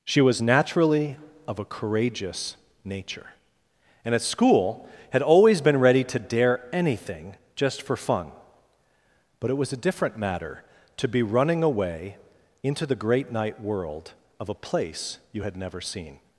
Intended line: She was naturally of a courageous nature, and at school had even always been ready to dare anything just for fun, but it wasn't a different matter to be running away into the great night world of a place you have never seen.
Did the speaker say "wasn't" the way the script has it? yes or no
no